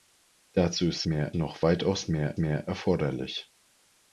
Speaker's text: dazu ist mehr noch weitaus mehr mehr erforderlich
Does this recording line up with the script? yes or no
yes